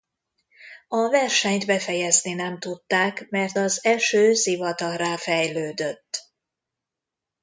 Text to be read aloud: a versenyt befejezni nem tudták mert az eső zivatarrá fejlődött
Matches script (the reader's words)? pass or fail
pass